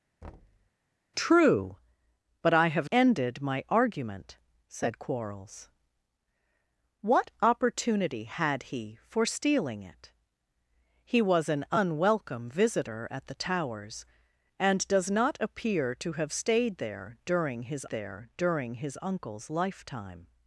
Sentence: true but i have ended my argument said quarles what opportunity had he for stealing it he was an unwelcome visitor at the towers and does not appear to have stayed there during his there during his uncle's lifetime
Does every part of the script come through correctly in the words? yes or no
yes